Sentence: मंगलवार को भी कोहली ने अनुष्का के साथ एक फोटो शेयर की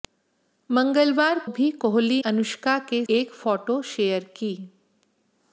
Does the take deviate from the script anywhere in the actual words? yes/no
yes